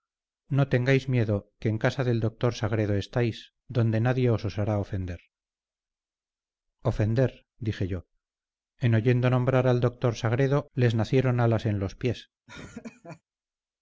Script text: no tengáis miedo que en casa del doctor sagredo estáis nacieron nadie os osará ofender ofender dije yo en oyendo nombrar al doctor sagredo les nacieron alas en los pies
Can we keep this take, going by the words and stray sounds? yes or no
no